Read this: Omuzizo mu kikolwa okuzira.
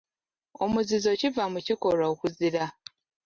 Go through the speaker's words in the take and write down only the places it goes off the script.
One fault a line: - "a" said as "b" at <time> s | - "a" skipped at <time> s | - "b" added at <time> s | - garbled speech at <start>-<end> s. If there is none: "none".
- "kiva" added at 1.2 s